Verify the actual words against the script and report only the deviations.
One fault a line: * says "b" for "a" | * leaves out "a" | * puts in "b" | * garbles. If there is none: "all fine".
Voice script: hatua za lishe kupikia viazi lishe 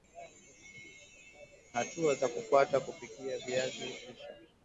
* says "kufuata" for "lishe"